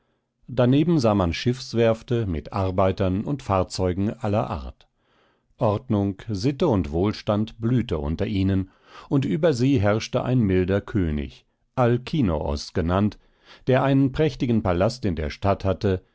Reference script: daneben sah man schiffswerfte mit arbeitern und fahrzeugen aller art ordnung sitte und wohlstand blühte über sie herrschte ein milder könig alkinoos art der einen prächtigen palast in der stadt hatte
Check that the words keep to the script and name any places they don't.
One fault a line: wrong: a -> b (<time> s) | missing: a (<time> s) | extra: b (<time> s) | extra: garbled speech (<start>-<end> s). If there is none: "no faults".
extra: unter ihnen und (8.0 s)
wrong: art -> genannt (12.7 s)